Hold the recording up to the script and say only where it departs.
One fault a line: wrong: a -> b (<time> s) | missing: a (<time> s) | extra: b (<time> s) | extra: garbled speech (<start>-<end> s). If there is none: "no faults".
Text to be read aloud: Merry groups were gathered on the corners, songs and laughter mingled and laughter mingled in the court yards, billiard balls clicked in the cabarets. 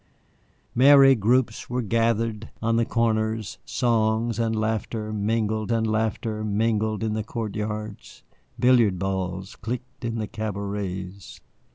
no faults